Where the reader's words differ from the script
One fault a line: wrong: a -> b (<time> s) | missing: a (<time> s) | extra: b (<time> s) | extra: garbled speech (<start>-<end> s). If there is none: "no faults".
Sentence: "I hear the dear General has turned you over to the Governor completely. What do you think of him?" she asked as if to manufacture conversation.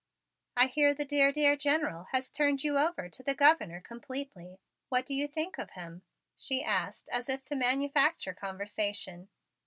extra: dear (1.3 s)